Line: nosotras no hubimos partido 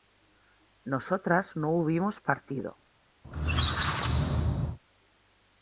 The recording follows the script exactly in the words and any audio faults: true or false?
false